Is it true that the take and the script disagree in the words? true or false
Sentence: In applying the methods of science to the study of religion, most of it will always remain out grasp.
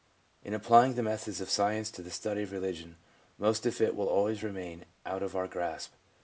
true